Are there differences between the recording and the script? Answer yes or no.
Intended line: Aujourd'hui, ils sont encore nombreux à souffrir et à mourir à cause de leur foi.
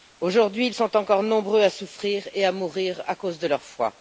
no